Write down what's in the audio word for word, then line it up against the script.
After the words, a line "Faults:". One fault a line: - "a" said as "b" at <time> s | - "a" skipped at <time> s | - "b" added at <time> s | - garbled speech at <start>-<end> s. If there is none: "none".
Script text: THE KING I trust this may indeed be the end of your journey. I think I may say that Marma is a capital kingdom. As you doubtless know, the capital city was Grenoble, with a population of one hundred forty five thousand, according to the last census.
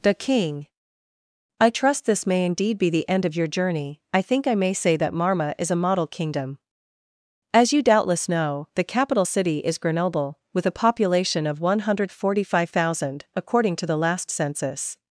THE KING I trust this may indeed be the end of your journey. I think I may say that Marma is a model kingdom. As you doubtless know, the capital city is Grenoble, with a population of one hundred forty five thousand, according to the last census.
Faults:
- "capital" said as "model" at 5.8 s
- "was" said as "is" at 9.6 s